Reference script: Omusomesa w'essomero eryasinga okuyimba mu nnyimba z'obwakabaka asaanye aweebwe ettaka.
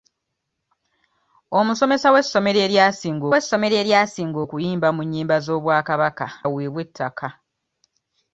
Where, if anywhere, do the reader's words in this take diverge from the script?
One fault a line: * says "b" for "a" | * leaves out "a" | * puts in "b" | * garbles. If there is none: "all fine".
* puts in "w'essomero eryasinga"
* leaves out "asaanye"